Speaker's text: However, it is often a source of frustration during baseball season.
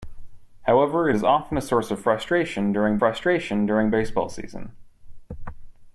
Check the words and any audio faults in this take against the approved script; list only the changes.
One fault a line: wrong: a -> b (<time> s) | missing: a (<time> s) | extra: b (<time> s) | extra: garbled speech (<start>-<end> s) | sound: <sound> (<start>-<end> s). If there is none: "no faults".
extra: frustration during (3.0 s)